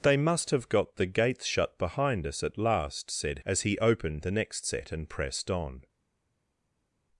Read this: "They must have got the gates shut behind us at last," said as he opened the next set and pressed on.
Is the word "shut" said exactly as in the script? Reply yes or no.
yes